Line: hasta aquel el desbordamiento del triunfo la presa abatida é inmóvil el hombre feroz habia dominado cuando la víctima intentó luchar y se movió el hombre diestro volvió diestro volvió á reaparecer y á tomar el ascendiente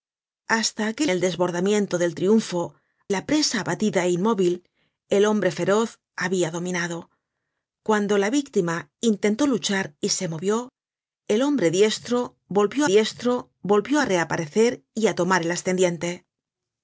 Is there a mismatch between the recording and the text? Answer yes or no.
no